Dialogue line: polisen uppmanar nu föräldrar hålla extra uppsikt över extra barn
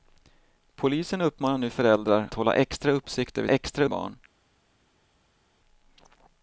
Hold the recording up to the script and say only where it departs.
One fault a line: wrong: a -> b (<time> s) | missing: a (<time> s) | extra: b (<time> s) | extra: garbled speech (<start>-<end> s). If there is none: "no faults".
no faults